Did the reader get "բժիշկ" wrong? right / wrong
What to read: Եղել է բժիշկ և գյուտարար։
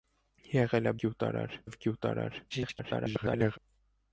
wrong